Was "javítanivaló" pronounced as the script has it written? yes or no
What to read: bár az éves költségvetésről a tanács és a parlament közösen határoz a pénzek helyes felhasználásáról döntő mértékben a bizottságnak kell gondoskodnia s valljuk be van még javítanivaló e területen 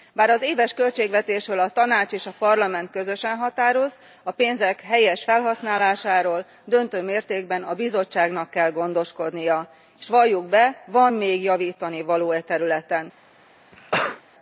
yes